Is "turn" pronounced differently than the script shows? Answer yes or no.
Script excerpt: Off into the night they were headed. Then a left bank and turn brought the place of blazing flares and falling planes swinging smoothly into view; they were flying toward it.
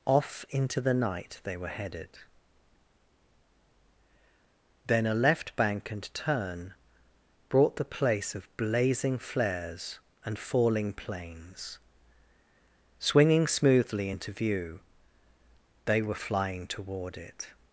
no